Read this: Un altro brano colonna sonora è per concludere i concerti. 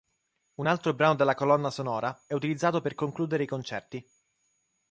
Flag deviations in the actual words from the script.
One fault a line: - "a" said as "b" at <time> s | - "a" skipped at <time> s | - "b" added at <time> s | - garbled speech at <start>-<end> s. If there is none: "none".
- "della" added at 1.2 s
- "utilizzato" added at 2.3 s